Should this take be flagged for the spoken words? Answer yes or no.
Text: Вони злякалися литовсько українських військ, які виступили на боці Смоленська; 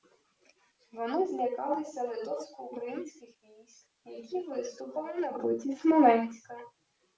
no